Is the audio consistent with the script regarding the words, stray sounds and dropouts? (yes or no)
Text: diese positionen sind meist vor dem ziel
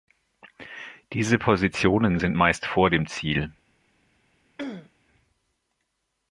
no